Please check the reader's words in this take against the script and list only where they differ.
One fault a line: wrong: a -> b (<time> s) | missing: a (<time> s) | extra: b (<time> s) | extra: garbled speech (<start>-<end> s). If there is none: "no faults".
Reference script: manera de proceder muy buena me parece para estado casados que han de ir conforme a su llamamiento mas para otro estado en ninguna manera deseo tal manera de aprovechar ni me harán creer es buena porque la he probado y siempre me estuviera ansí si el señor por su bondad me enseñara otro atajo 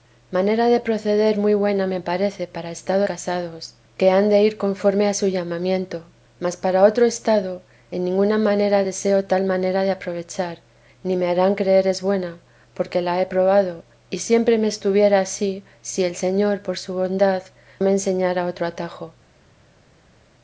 no faults